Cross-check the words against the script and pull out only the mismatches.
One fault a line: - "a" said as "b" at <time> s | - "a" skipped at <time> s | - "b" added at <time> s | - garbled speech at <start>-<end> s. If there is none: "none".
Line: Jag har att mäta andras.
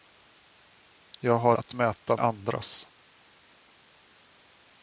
none